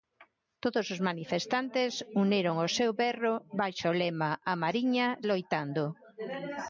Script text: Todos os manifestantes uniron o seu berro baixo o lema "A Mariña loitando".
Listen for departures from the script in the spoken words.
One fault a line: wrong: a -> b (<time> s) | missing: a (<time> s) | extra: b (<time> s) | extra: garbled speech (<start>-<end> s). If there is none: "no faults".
no faults